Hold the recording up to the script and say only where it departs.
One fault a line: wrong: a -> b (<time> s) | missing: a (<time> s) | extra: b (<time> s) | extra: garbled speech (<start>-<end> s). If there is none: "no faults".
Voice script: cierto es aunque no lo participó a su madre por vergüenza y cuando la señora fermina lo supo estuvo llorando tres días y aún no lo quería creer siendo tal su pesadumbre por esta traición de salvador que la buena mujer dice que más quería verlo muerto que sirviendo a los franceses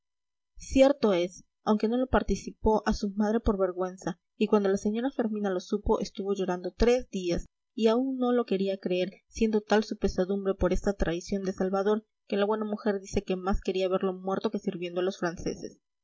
no faults